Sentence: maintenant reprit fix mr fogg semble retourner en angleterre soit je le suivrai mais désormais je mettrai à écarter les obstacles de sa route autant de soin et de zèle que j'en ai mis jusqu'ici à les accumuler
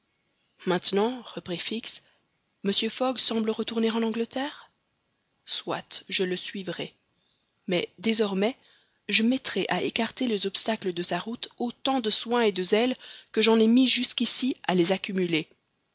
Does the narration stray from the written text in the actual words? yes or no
no